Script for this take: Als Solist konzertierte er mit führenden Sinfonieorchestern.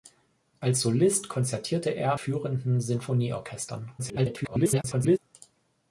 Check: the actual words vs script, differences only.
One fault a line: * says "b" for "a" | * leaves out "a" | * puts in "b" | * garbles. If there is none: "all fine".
* leaves out "mit"
* garbles